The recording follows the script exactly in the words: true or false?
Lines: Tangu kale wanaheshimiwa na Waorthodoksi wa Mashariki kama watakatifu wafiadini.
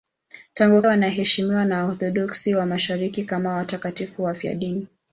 false